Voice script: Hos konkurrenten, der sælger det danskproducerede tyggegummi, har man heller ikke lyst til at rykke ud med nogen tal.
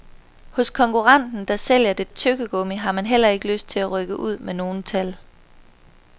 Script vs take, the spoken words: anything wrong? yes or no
yes